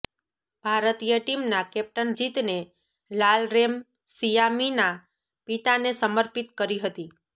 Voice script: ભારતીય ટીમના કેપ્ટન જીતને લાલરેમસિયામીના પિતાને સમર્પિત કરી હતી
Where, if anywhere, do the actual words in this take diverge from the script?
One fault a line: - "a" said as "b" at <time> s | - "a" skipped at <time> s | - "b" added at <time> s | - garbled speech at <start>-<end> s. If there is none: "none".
none